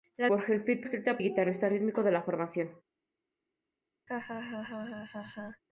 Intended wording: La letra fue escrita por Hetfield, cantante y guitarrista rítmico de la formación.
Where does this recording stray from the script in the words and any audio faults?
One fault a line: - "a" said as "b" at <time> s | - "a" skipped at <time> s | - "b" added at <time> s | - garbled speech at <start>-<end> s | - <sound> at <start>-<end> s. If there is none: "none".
- "letra fue escrita" skipped at 0.3 s
- "cantante" said as "escrita" at 0.8 s
- laugh at 4.1-5.6 s